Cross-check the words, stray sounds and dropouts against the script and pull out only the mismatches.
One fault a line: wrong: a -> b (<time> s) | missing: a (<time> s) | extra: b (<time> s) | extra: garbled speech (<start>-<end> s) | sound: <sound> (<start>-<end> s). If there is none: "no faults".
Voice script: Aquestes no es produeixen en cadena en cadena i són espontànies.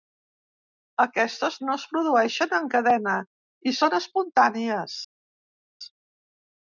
missing: en cadena (3.1 s)